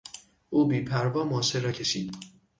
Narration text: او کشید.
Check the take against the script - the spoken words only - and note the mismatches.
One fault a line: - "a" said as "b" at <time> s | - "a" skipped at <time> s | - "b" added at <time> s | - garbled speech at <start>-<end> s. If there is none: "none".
- "بیپروا ماشه را" added at 0.7 s